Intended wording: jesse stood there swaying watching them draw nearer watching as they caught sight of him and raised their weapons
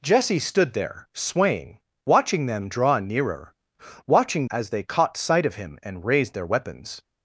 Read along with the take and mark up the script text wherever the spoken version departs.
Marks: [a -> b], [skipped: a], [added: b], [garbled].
jesse stood there swaying watching them draw nearer watching as they caught sight of him and raised their weapons